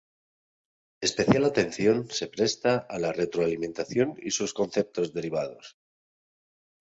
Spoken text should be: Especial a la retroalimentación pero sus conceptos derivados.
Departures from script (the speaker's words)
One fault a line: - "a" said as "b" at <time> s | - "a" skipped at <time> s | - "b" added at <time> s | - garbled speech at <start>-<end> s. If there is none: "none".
- "atención se presta" added at 1.4 s
- "pero" said as "y" at 4.2 s